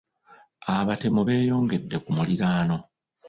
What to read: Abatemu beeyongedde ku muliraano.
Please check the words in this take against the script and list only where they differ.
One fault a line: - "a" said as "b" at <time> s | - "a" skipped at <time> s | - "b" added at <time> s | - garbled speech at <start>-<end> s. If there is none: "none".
none